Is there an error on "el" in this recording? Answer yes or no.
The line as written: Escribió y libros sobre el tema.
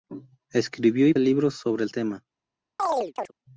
no